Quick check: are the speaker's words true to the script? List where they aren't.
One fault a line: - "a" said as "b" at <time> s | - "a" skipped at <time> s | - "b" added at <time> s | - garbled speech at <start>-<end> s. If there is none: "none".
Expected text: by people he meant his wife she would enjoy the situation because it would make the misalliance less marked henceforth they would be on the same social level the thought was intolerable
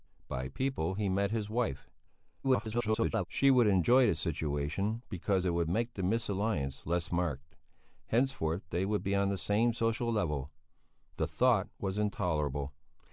- garbled speech at 2.4-3.3 s